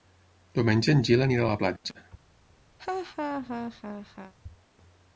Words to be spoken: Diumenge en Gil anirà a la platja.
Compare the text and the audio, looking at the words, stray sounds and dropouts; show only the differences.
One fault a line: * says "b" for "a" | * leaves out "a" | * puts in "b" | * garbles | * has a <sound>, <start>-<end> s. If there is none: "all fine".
* has a laugh, 2.8-4.3 s